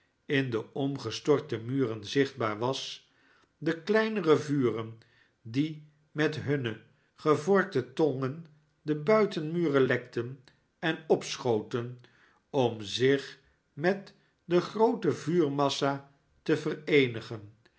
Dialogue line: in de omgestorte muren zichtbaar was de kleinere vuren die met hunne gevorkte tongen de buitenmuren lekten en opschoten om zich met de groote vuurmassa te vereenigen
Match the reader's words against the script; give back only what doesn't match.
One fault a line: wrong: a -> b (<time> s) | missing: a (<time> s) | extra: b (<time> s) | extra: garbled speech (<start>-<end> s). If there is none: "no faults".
no faults